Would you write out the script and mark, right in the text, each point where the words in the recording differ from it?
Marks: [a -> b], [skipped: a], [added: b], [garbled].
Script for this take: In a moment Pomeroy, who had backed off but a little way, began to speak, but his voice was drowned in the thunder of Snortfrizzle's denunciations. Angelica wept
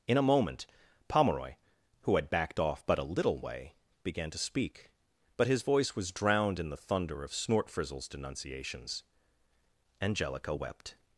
In a moment Pomeroy, who had backed off but a little way, began to speak, but his voice was drowned in the thunder of Snortfrizzle's denunciations. Angelica wept